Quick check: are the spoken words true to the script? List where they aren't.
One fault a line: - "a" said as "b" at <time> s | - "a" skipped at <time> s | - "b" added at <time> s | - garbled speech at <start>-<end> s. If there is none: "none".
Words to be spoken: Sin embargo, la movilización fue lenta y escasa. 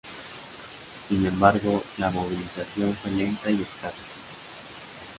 none